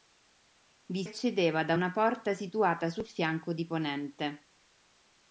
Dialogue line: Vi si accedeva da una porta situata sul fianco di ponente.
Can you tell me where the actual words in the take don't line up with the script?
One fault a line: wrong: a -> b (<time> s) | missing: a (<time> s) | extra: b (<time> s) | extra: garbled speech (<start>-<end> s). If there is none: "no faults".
missing: si (1.0 s)